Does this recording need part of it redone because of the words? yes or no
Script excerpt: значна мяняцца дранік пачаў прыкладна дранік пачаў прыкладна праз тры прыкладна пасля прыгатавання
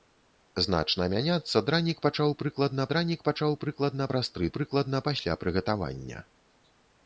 no